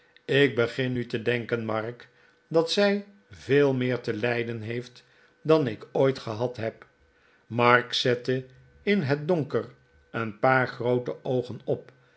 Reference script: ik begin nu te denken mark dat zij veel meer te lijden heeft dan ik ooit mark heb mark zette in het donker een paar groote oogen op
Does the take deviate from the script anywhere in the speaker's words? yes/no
yes